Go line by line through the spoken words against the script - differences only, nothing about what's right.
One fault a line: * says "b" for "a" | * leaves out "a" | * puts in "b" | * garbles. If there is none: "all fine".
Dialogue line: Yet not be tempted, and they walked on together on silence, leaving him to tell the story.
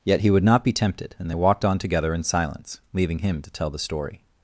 * puts in "he would"
* says "in" for "on"